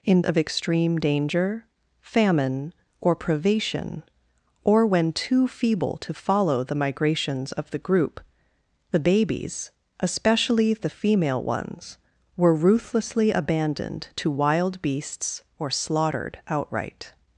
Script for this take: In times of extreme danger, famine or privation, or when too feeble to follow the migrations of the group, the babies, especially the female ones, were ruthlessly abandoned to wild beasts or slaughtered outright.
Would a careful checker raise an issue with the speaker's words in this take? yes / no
yes